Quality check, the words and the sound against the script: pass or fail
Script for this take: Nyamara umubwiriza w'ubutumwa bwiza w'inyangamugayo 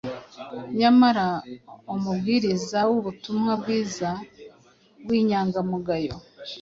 pass